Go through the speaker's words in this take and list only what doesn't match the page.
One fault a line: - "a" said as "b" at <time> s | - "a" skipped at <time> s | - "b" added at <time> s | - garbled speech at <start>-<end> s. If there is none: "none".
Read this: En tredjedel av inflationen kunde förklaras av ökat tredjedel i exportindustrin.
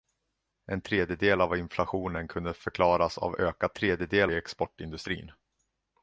none